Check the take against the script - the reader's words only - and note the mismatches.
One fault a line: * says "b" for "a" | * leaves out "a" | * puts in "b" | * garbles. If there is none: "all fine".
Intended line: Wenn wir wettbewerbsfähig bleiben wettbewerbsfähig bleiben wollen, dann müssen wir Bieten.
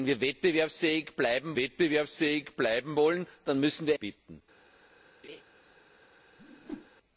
all fine